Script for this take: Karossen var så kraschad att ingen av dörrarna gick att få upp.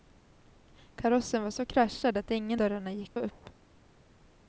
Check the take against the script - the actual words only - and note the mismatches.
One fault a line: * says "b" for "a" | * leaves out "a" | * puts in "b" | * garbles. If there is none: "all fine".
* leaves out "av"
* leaves out "att få"